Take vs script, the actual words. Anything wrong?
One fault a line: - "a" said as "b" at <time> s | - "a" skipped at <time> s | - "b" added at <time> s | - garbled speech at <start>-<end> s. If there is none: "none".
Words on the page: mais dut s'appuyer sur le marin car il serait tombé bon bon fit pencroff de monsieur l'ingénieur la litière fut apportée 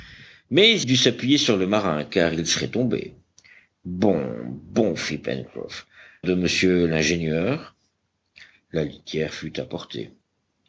none